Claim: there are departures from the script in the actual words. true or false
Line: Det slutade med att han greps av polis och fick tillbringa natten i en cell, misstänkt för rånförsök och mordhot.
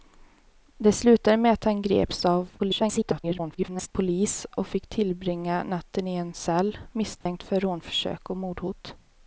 true